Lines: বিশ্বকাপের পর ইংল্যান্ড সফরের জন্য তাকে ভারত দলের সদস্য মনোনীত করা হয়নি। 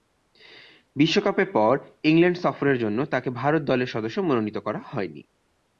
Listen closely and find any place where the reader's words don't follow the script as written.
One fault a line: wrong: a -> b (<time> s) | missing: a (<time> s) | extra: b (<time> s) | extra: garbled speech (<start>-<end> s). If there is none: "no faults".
no faults